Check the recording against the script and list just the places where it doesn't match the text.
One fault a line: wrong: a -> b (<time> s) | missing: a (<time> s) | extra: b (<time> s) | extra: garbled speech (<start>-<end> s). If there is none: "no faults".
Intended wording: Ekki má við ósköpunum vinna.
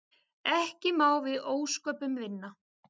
no faults